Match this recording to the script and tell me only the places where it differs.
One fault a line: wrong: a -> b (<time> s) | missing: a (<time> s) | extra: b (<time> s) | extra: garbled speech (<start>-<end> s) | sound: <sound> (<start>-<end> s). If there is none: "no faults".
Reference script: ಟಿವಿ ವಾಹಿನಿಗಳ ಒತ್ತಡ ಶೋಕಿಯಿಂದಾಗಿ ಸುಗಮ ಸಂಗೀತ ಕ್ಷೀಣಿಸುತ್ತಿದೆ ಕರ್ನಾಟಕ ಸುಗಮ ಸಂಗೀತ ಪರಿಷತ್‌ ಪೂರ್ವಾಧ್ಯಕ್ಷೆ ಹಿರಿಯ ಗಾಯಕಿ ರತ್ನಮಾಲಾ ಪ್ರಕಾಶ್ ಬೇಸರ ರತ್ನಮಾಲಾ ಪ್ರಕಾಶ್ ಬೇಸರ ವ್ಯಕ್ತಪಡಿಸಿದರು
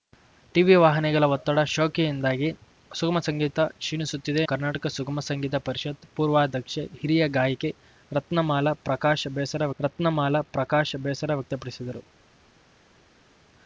no faults